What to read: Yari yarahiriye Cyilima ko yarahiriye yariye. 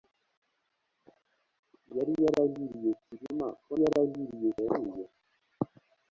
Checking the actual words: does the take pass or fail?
pass